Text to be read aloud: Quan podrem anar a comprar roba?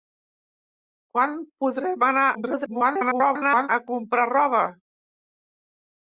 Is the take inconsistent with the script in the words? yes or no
yes